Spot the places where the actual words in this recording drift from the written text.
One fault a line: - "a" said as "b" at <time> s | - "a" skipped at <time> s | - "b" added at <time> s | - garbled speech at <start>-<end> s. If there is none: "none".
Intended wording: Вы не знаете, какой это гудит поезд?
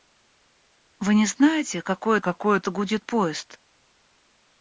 - "какой" added at 2.2 s